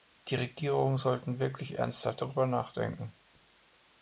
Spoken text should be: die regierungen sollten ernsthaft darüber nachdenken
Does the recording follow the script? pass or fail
fail